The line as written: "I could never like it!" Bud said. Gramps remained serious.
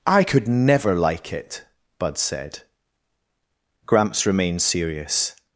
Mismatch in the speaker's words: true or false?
false